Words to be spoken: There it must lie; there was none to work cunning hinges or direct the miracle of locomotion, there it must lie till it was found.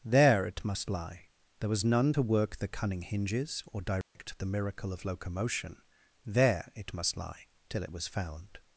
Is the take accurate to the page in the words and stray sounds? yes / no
no